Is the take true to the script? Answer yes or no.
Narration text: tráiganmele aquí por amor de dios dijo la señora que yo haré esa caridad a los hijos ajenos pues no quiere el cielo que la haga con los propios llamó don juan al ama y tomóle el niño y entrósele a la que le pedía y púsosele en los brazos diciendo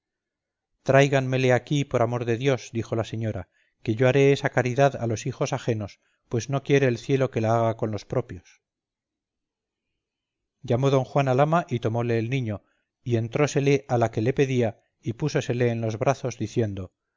yes